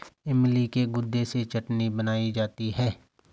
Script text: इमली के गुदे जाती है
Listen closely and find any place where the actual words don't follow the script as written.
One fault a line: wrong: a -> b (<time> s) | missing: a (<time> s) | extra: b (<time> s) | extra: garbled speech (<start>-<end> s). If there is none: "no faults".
extra: से चटनी बनाई (1.2 s)